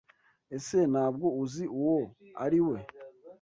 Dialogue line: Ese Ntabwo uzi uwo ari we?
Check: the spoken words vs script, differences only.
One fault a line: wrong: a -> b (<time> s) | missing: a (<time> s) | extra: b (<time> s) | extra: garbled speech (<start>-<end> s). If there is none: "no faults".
no faults